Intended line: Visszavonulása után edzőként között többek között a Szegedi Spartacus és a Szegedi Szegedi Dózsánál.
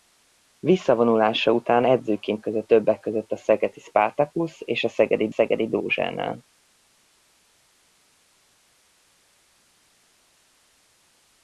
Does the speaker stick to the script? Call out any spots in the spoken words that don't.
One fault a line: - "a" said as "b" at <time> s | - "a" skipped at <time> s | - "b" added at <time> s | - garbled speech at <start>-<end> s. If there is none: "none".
none